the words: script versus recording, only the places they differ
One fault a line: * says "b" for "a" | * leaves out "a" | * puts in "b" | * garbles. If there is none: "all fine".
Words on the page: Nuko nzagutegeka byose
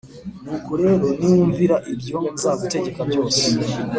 * puts in "rero niwumvira ibyo"